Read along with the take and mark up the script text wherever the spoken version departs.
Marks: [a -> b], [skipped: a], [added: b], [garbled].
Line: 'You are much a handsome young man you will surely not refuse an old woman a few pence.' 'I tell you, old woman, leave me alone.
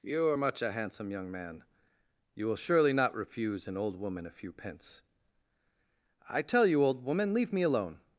'You are much a handsome young man you will surely not refuse an old woman a few pence.' 'I tell you, old woman, leave me alone.